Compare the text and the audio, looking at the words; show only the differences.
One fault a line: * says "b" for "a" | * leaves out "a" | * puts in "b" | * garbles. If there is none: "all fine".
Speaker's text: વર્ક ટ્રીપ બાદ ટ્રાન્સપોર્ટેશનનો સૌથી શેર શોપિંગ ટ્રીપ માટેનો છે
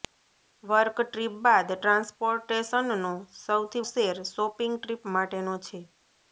all fine